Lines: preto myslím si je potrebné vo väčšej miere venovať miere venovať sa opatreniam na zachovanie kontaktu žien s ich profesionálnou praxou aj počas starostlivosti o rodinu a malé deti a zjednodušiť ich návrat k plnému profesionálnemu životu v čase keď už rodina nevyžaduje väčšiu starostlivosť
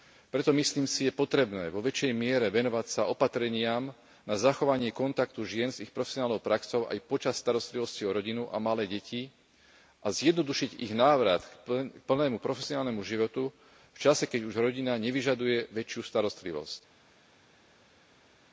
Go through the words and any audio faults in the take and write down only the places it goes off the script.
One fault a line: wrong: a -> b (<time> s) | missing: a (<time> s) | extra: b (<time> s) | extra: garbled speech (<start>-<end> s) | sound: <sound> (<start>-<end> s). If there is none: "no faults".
missing: miere venovať (2.9 s)